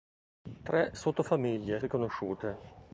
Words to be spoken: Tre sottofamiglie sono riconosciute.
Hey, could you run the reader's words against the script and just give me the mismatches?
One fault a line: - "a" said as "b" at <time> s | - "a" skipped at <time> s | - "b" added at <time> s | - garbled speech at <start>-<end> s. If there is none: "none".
- "sono" skipped at 1.8 s